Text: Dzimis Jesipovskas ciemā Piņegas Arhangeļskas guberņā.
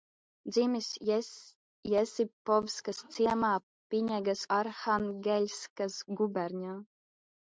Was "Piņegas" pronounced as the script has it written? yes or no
yes